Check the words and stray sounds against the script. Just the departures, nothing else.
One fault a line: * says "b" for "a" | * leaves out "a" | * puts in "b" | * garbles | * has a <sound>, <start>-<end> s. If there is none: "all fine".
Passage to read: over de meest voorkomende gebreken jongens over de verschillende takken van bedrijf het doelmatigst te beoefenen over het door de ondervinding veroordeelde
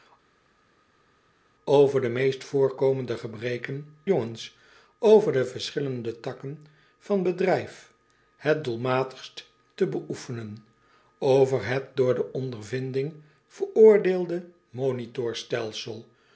all fine